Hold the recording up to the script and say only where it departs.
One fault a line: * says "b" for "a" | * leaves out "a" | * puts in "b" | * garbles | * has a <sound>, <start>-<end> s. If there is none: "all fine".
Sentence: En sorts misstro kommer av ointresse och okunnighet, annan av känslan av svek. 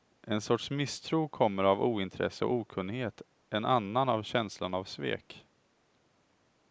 * puts in "en"